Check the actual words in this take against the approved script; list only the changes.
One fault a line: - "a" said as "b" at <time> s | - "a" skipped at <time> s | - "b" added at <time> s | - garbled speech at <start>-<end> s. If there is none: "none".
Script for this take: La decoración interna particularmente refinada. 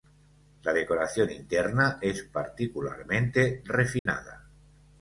- "es" added at 2.0 s